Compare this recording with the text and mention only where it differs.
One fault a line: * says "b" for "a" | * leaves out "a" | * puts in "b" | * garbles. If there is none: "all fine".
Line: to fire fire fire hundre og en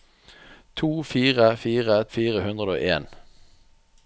all fine